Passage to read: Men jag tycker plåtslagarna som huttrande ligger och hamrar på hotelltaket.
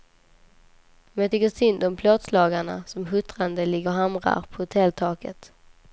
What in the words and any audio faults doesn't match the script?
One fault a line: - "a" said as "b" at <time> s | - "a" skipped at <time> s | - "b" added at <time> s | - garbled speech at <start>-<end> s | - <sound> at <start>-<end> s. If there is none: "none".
- "synd om" added at 1.5 s